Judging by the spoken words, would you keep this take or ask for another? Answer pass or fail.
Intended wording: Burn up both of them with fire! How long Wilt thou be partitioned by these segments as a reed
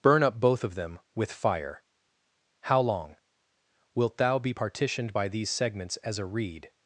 pass